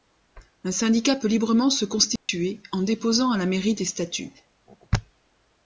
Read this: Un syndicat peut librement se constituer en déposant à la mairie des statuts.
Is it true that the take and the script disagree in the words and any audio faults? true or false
true